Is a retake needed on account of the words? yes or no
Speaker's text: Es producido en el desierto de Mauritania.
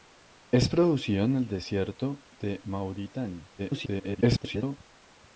yes